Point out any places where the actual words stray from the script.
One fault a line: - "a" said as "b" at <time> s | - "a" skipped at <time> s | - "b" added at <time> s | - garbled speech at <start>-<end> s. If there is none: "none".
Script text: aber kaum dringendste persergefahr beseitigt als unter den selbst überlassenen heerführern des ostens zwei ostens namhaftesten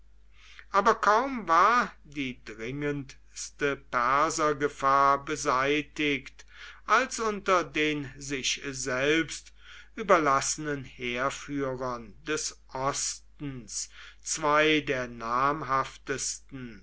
- "war die" added at 1.5 s
- "sich" added at 8.2 s
- "ostens" said as "der" at 14.8 s